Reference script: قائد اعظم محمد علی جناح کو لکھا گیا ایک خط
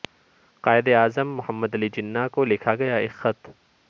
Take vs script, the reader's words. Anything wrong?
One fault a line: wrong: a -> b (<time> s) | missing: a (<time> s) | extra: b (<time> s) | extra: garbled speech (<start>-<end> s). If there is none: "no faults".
no faults